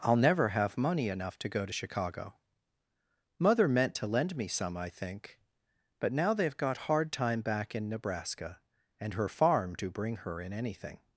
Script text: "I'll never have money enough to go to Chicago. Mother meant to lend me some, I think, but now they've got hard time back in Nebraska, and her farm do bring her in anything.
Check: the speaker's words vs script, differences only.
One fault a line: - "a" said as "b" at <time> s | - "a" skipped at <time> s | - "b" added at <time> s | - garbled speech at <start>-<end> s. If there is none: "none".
none